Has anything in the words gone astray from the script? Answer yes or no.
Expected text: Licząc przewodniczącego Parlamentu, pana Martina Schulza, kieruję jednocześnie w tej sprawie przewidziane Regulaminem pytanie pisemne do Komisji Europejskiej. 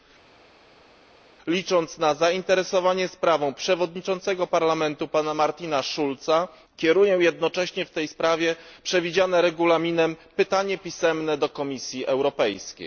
yes